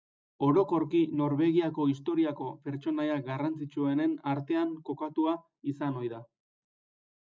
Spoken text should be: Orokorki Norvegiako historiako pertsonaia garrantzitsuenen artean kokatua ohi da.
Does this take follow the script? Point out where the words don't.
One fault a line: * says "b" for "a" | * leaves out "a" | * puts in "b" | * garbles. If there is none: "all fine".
* puts in "izan"